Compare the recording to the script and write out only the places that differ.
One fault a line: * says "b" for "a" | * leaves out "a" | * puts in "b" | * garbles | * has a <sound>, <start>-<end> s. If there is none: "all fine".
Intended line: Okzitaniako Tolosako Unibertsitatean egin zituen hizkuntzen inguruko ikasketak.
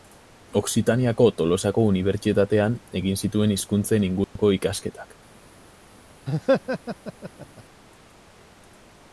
* has a dropout, 4.2-4.4 s
* has a laugh, 6.3-7.6 s